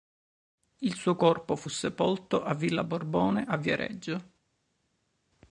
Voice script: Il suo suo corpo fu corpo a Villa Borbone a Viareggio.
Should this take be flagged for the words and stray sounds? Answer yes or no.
yes